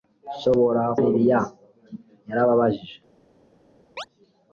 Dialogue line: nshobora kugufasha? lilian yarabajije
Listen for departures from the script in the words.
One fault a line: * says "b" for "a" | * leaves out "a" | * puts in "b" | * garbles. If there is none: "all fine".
* leaves out "kugufasha"